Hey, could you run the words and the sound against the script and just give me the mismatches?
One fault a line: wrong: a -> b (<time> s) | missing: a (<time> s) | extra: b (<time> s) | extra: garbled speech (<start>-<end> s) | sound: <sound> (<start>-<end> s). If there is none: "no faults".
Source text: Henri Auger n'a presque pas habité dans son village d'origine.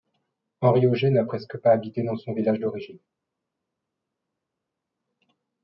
no faults